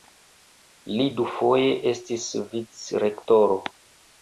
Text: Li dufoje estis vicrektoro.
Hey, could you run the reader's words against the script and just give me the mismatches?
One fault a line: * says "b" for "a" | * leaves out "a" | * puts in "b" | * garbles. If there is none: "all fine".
all fine